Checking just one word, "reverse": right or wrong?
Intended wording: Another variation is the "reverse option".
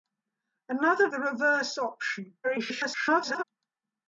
right